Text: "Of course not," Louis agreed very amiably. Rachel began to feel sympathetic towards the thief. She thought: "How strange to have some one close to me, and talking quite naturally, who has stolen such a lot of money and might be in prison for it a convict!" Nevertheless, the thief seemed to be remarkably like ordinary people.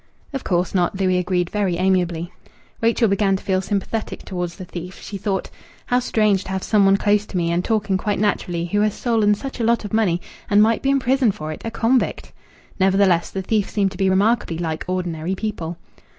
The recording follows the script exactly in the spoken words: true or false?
true